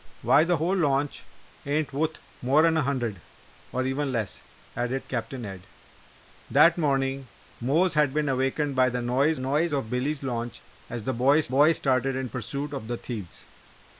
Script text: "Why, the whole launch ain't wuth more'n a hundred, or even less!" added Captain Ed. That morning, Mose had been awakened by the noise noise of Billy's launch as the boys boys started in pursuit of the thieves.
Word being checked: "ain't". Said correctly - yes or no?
yes